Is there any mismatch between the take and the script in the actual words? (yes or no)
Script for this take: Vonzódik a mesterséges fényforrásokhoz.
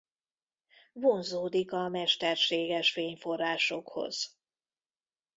no